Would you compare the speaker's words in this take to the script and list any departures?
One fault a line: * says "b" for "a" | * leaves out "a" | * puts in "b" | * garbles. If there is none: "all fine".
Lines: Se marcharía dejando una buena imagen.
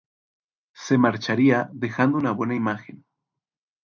all fine